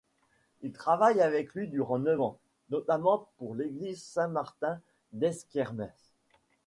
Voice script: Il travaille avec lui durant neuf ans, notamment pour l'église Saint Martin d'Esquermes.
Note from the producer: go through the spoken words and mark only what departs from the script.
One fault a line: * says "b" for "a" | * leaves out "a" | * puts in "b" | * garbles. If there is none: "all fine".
all fine